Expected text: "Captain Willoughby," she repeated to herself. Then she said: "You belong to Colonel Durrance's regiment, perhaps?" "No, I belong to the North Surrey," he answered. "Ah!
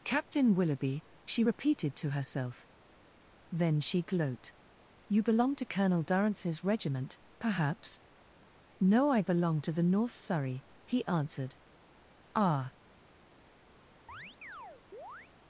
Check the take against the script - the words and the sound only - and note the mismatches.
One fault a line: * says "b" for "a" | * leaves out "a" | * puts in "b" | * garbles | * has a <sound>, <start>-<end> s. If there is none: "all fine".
* says "gloat" for "said"
* has a chirp, 14.1-15.3 s